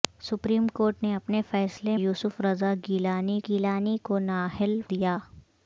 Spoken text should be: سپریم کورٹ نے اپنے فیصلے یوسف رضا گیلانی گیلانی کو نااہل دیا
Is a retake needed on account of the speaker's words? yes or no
no